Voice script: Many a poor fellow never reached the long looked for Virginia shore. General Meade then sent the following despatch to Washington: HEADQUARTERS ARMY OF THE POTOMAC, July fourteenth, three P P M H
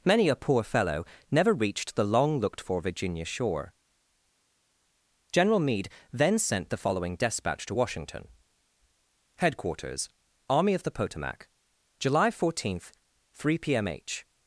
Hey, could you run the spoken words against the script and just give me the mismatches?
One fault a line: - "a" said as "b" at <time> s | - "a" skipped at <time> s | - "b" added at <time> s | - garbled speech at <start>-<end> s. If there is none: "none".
- "P" skipped at 13.8 s